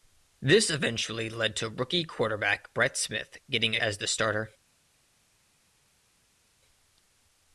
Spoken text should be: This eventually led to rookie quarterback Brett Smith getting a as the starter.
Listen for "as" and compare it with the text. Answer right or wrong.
right